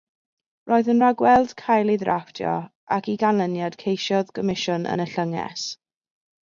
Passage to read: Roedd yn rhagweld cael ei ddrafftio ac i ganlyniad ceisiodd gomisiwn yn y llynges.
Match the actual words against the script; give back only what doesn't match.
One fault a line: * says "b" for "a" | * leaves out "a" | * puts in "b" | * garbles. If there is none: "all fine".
all fine